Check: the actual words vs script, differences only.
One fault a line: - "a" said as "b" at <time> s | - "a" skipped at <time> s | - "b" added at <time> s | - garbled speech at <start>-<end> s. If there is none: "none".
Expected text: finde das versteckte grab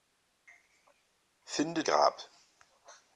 - "das versteckte" skipped at 1.8 s